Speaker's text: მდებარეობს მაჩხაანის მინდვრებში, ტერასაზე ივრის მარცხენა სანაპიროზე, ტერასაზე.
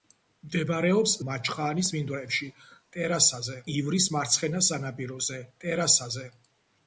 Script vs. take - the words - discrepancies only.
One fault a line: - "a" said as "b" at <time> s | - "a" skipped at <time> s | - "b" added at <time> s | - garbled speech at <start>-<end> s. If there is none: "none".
none